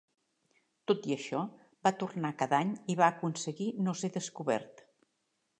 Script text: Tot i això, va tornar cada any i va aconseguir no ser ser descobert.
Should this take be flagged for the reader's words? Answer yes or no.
yes